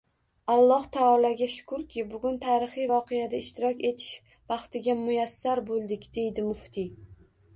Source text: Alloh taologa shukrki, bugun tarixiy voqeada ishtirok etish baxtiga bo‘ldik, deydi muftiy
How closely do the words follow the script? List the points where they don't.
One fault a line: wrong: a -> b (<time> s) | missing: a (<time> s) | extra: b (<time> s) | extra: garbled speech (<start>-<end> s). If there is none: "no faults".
extra: muyassar (5.0 s)